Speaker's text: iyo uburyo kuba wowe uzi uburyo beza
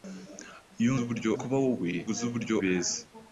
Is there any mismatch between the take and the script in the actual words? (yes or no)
no